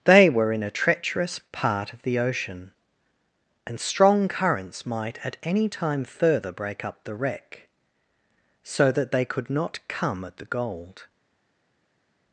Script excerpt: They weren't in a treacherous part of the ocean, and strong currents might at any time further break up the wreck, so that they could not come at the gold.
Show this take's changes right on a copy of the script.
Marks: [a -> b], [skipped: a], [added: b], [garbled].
They [weren't -> were] in a treacherous part of the ocean, and strong currents might at any time further break up the wreck, so that they could not come at the gold.